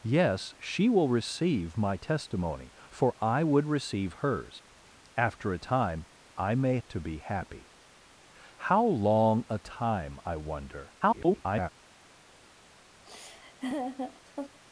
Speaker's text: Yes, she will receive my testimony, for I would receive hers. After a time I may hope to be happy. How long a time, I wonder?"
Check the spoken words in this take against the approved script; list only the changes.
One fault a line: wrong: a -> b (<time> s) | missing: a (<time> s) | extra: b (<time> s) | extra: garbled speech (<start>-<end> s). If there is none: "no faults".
missing: hope (6.8 s)
extra: garbled speech (11.0-11.7 s)